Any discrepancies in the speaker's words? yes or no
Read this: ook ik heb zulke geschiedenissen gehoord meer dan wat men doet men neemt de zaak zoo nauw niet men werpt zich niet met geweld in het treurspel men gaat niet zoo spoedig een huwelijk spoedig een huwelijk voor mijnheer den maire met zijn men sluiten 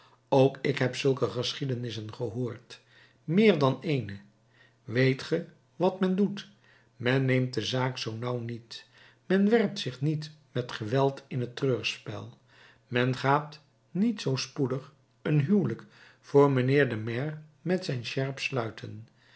yes